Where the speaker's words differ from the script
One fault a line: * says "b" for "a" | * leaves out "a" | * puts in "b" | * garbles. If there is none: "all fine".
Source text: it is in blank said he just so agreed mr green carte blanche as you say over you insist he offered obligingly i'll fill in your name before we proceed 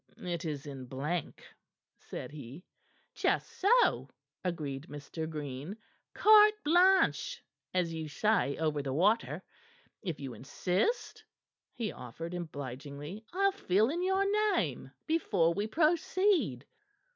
* puts in "the water if"